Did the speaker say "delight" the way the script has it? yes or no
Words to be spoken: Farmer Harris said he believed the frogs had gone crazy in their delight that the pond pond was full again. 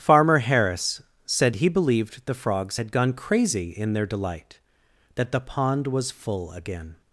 yes